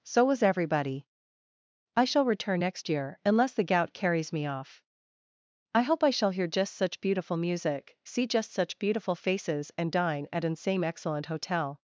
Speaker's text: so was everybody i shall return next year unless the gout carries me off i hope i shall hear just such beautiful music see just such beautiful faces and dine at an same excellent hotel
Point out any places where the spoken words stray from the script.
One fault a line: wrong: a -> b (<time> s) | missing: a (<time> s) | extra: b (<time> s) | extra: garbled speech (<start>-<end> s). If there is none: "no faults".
no faults